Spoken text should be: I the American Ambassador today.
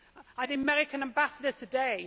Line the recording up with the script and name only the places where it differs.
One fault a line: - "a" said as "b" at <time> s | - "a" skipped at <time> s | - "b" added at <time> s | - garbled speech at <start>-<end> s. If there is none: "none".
none